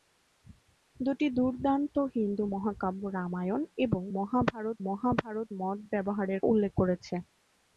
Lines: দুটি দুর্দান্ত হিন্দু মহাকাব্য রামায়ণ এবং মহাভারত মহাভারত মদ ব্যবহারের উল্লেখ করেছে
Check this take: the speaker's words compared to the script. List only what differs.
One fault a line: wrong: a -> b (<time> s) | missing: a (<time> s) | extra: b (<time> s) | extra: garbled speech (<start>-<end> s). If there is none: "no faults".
no faults